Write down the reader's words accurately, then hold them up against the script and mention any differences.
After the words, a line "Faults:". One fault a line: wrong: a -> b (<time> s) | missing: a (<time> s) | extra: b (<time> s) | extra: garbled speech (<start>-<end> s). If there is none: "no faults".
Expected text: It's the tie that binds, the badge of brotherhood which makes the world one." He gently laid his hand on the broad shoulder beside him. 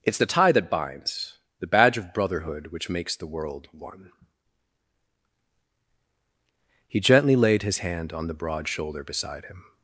It's the tie that binds, the badge of brotherhood which makes the world one." He gently laid his hand on the broad shoulder beside him.
Faults:
no faults